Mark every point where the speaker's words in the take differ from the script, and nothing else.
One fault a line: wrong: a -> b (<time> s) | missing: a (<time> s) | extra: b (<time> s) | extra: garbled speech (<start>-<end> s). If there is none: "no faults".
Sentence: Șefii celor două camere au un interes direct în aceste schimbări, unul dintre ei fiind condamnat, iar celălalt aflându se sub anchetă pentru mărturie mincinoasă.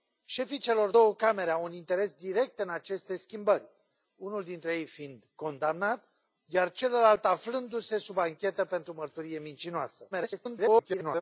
extra: garbled speech (10.1-11.2 s)